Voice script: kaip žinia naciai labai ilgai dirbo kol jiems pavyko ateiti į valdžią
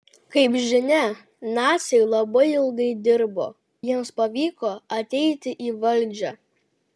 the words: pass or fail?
fail